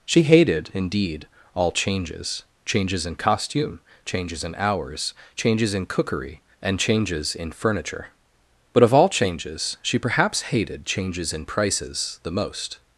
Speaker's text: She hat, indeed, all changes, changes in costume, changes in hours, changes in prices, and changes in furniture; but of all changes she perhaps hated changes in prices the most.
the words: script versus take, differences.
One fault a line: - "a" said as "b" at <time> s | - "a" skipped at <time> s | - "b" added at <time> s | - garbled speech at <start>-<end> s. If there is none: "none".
- "hat" said as "hated" at 0.2 s
- "prices" said as "cookery" at 5.9 s